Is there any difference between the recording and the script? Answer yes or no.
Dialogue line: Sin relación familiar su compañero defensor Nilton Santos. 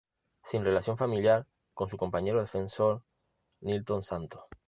yes